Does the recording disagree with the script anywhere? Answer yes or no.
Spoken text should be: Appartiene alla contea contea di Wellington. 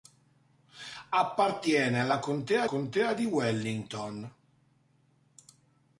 no